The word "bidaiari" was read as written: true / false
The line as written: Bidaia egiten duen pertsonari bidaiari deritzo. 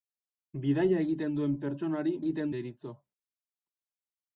false